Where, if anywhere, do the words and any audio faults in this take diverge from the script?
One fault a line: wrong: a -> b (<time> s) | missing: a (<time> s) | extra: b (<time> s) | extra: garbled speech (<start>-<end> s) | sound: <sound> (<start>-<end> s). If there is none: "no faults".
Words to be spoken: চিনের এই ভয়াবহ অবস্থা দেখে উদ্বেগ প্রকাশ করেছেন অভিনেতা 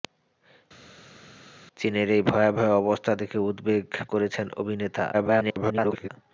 missing: প্রকাশ (3.8 s)
extra: garbled speech (5.1-6.1 s)